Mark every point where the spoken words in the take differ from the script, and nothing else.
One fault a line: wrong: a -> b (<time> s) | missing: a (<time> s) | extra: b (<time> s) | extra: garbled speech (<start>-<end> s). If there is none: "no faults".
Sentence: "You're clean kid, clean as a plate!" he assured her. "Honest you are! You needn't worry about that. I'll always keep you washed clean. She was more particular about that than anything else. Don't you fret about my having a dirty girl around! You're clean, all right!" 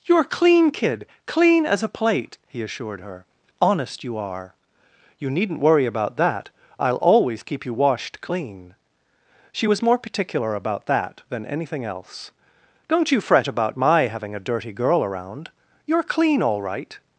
no faults